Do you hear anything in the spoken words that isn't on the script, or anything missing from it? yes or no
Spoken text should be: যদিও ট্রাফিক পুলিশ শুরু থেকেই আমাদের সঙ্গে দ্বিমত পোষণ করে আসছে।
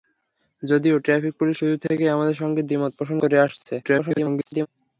yes